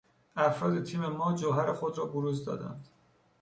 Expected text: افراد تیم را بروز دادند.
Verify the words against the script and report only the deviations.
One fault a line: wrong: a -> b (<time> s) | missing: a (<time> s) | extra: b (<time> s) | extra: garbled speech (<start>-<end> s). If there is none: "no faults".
extra: ما جوهر خود (1.1 s)